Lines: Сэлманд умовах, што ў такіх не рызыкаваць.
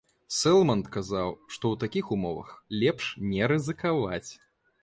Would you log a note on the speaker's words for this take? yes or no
yes